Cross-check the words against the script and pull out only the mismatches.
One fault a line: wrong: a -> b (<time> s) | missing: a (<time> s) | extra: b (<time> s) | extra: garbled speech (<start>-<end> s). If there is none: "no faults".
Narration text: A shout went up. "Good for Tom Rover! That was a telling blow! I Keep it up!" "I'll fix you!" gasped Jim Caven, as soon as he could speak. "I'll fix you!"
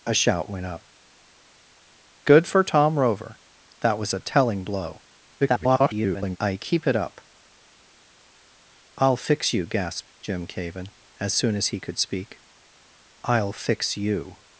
extra: garbled speech (5.4-6.4 s)